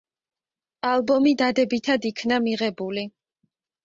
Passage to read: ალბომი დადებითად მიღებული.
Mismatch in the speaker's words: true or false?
true